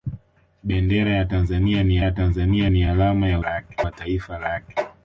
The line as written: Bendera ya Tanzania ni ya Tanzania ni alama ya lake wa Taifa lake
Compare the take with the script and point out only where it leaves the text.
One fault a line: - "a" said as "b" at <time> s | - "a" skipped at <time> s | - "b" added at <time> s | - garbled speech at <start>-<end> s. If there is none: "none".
none